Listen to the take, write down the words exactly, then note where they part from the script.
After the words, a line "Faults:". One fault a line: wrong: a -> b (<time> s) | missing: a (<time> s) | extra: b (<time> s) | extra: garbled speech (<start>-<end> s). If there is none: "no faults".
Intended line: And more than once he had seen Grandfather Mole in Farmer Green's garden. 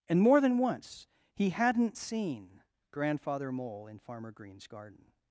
And more than once he hadn't seen Grandfather Mole in Farmer Green's garden.
Faults:
wrong: had -> hadn't (1.5 s)